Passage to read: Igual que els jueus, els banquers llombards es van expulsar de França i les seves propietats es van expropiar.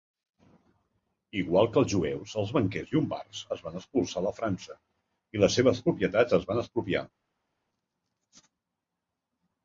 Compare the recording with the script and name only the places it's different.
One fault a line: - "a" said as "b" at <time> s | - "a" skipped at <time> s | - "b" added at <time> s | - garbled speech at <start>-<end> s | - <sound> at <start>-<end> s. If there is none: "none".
none